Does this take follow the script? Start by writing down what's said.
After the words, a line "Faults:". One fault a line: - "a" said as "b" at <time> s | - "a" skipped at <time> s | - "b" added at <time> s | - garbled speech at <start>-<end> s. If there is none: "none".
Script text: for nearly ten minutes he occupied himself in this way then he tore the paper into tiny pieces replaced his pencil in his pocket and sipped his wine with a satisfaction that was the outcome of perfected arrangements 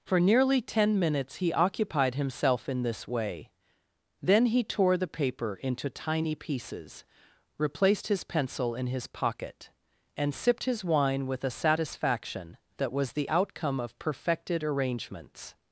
for nearly ten minutes he occupied himself in this way then he tore the paper into tiny pieces replaced his pencil in his pocket and sipped his wine with a satisfaction that was the outcome of perfected arrangements
Faults:
none